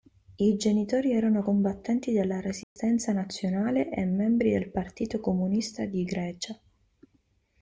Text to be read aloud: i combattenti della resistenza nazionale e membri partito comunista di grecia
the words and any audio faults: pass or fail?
fail